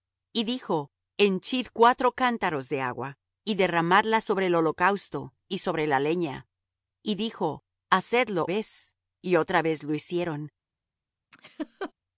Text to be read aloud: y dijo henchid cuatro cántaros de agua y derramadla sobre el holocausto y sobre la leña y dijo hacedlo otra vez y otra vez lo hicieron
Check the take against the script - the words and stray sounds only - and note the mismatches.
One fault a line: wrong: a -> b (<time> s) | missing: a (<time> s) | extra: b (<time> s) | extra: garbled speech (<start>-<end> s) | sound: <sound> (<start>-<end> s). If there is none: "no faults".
missing: otra (8.4 s)
sound: laugh (11.3-11.9 s)